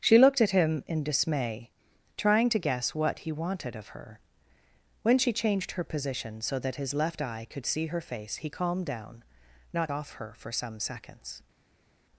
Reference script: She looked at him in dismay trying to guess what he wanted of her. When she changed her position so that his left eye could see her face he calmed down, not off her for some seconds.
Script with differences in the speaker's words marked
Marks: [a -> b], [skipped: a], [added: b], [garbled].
She looked at him in dismay trying to guess what he wanted of her. When she changed her position so that his left eye could see her face he calmed down, not off her for some seconds.